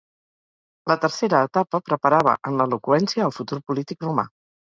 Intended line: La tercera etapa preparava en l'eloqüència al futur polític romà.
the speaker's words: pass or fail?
pass